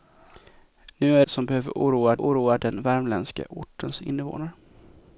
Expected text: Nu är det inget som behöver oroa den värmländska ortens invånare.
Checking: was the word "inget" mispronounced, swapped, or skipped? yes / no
yes